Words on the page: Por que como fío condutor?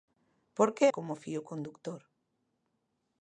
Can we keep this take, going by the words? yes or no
yes